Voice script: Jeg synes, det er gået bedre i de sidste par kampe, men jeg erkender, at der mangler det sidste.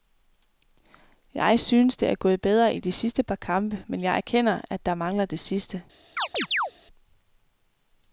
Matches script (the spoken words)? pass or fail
pass